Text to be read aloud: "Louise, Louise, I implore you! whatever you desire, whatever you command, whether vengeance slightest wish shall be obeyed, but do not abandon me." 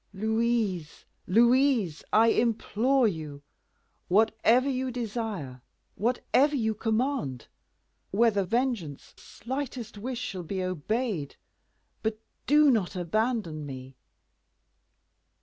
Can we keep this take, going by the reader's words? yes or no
yes